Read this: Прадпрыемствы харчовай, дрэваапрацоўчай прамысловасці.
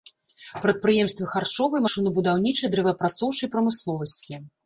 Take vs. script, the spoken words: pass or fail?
fail